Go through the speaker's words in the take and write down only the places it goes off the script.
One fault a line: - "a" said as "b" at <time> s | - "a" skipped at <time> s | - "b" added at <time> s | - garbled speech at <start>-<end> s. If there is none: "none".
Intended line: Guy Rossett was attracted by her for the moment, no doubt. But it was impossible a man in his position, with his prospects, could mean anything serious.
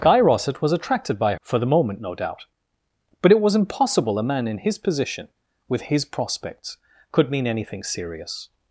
- "her" skipped at 1.4 s